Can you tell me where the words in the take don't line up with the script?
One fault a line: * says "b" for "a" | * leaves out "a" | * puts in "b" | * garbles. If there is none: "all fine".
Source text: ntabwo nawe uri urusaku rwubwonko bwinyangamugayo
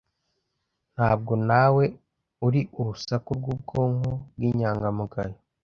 all fine